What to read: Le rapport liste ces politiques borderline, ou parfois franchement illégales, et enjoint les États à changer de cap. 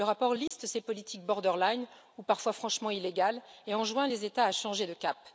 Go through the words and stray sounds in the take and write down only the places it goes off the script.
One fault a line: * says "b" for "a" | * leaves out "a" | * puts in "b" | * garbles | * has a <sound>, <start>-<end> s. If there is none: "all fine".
* has a dropout, 0.5-0.5 s